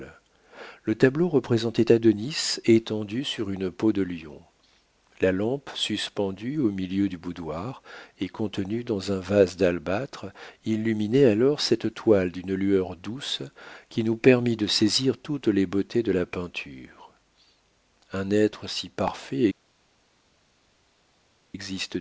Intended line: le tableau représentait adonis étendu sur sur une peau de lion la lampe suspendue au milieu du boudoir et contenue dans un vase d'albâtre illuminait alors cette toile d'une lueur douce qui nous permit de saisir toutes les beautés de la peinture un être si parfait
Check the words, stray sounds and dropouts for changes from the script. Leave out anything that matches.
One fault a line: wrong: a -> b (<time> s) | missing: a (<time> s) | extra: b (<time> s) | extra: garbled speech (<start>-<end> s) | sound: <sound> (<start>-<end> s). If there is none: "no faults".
missing: sur (3.5 s)